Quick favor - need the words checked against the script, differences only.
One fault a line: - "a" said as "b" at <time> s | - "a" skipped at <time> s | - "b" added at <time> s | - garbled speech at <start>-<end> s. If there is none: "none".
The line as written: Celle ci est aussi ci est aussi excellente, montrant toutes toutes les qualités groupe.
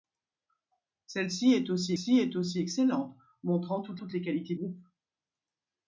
none